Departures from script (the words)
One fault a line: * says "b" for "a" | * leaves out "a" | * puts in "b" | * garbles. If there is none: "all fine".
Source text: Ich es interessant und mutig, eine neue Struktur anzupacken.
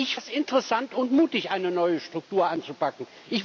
all fine